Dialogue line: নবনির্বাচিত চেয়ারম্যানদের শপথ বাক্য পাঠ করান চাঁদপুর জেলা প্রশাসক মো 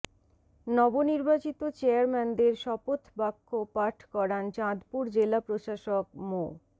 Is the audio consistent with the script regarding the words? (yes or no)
yes